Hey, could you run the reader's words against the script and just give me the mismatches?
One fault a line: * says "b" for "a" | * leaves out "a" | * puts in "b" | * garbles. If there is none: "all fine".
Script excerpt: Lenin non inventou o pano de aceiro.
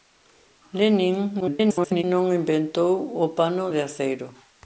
* garbles